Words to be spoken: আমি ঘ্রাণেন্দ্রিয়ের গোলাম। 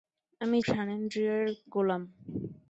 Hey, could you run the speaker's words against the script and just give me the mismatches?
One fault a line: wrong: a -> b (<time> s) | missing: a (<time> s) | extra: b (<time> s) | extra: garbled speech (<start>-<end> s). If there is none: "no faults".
no faults